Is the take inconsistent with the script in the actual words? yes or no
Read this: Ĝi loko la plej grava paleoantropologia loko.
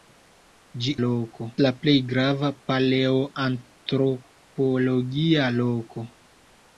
no